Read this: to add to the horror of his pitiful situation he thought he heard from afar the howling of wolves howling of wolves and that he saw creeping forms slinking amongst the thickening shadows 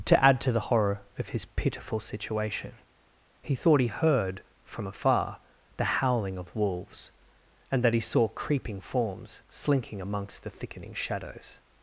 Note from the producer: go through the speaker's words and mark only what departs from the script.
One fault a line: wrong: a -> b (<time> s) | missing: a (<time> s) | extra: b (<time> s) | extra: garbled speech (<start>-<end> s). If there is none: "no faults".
missing: howling of wolves (7.1 s)